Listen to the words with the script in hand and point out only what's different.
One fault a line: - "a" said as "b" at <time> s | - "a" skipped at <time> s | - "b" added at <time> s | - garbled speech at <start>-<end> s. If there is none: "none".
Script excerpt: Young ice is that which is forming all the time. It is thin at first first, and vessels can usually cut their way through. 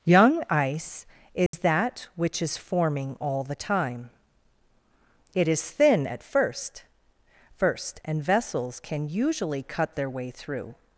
none